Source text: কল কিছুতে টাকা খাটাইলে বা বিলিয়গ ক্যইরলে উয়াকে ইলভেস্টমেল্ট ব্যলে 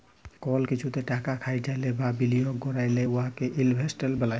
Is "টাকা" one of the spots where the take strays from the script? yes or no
no